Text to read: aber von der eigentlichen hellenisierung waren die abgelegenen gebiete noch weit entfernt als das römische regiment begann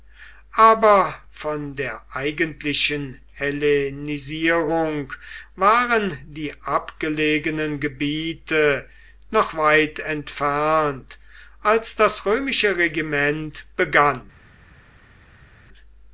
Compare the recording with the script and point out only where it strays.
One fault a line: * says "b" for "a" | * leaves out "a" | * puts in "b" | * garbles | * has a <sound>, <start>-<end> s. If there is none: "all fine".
all fine